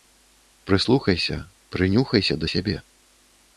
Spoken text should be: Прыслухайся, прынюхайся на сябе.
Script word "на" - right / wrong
wrong